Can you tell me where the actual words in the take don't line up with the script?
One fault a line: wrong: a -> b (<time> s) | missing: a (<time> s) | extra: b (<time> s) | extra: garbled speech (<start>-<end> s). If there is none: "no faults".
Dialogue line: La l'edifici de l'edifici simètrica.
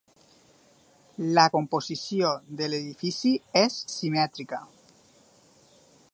wrong: l'edifici -> composició (1.5 s)
extra: és (3.6 s)